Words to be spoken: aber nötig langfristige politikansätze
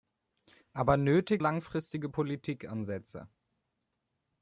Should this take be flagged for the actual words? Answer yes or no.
no